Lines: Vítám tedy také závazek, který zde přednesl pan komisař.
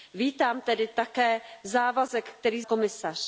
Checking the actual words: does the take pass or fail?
fail